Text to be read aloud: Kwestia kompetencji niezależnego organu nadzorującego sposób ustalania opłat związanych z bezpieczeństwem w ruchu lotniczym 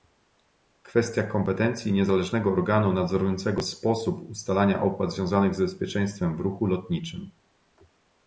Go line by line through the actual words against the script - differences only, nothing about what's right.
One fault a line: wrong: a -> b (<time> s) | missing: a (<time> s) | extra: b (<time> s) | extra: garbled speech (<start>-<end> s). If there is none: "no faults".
no faults